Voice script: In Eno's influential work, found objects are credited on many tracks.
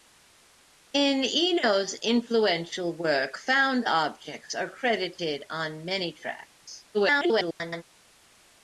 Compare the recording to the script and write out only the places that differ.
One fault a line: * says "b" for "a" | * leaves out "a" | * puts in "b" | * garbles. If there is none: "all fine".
* garbles